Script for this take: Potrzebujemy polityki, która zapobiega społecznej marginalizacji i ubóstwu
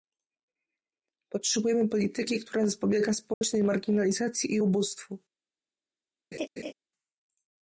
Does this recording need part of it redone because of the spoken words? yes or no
no